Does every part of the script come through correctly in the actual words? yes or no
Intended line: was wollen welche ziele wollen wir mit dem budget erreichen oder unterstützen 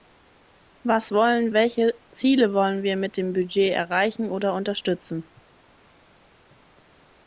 yes